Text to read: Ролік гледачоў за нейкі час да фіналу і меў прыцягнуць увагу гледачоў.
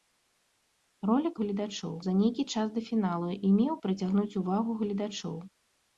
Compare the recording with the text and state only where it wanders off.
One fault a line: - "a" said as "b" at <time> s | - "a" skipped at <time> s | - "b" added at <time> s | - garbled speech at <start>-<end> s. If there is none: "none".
none